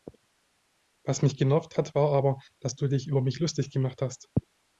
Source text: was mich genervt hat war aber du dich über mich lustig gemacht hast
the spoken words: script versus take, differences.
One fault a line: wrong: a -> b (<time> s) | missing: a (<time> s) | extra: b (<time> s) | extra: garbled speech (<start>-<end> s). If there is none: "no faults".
extra: dass (2.6 s)